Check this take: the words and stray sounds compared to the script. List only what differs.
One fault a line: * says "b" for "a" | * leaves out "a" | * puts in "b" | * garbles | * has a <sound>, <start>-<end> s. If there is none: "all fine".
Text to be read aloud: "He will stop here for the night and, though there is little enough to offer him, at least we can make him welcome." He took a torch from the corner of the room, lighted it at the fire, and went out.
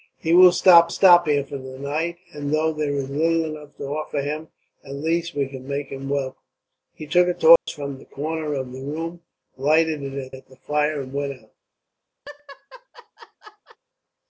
* puts in "stop"
* has a dropout, 7.6-7.7 s
* puts in "at"
* has a laugh, 12.2-13.8 s